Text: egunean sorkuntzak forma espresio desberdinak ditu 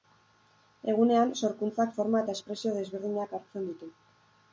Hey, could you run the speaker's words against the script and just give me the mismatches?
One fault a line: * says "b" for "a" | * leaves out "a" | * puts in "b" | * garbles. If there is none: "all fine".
* puts in "eta"
* puts in "hartzen"